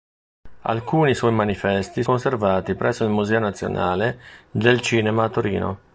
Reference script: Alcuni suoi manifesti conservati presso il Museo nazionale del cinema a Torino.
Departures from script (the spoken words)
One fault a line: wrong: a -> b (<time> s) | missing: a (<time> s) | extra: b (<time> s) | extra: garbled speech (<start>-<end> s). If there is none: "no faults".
no faults